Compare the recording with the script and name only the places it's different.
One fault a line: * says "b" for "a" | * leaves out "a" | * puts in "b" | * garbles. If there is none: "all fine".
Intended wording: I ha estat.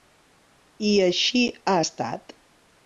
* puts in "així"